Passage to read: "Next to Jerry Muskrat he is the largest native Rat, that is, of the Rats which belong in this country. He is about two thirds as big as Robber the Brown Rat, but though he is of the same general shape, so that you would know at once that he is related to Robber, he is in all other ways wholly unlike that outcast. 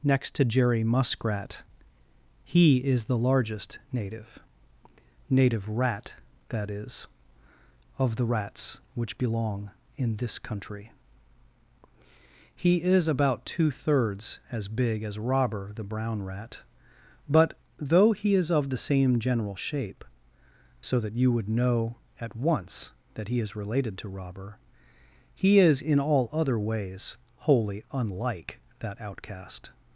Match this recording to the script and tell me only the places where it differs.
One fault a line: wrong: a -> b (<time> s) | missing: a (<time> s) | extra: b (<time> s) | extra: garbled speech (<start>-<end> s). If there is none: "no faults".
extra: native (5.3 s)